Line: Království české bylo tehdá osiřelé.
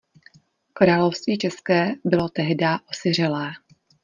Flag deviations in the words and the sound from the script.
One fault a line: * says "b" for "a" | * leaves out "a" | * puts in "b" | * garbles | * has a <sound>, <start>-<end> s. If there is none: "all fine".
all fine